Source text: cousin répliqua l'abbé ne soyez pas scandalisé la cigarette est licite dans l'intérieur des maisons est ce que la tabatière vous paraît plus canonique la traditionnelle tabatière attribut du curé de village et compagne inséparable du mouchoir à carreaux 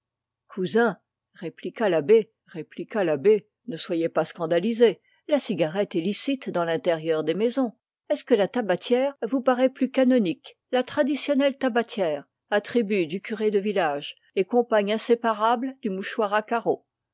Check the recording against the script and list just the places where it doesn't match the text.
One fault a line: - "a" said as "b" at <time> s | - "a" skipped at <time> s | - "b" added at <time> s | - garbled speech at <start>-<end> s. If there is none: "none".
- "répliqua l'abbé" added at 2.5 s